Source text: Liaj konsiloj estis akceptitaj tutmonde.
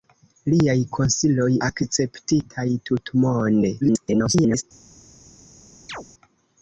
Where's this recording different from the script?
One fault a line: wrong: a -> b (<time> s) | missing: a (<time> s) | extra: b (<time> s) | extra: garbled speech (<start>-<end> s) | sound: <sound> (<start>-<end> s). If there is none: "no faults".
missing: estis (1.5 s)
extra: garbled speech (3.8-4.6 s)
sound: chirp (5.9-6.1 s)